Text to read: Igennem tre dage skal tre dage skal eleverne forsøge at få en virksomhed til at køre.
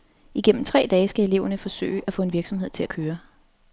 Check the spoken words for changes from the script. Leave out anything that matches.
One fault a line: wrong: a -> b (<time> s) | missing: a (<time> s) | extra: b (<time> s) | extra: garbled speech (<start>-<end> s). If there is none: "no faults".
missing: tre dage skal (1.2 s)